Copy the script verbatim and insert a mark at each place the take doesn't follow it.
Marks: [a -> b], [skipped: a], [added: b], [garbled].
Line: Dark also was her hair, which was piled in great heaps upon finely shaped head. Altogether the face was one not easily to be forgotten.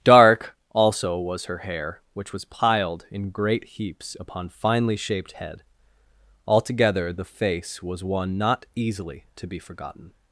Dark also was her hair, which was piled in great heaps upon finely shaped head. Altogether the face was one not easily to be forgotten.